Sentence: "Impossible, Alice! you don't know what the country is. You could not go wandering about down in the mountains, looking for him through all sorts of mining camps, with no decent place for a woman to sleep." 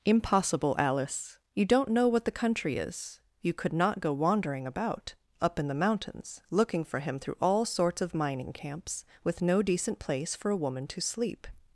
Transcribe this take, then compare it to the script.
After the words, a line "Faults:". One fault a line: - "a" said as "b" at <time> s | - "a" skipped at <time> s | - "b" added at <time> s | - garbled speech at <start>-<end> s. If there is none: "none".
"Impossible, Alice! you don't know what the country is. You could not go wandering about up in the mountains, looking for him through all sorts of mining camps, with no decent place for a woman to sleep."
Faults:
- "down" said as "up" at 5.4 s